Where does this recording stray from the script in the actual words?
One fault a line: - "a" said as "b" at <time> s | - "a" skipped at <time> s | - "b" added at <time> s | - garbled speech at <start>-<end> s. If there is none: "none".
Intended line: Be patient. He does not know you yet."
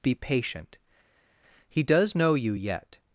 - "not" skipped at 2.1 s